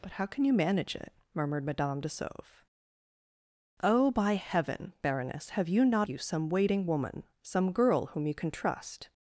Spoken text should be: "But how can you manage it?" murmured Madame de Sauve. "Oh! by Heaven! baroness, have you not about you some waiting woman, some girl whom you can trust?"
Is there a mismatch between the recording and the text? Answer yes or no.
yes